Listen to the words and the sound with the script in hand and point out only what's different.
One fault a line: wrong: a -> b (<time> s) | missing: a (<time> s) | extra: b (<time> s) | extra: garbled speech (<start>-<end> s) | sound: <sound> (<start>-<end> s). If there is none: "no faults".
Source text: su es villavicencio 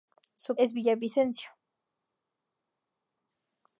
no faults